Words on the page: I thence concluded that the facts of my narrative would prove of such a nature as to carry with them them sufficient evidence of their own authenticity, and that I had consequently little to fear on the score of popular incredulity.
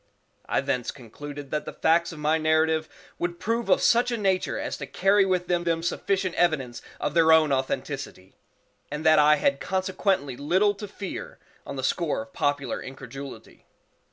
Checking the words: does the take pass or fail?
pass